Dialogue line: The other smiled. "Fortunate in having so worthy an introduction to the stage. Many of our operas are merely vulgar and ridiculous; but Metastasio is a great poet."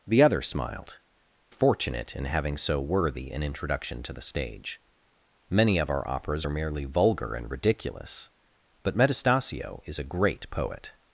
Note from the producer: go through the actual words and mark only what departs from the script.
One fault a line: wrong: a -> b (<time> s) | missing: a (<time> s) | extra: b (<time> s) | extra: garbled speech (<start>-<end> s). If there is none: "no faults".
no faults